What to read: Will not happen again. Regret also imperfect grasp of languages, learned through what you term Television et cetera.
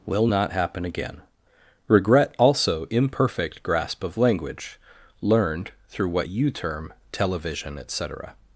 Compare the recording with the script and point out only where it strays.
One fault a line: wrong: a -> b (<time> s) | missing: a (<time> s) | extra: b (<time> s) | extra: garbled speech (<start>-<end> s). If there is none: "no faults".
wrong: languages -> language (4.2 s)